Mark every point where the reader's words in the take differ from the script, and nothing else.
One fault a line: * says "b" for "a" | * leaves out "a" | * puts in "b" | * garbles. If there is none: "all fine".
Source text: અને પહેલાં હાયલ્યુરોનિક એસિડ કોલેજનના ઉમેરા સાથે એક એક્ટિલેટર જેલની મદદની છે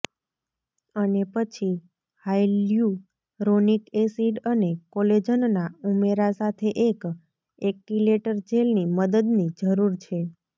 * says "પછી" for "પહેલાં"
* puts in "અને"
* puts in "જરૂર"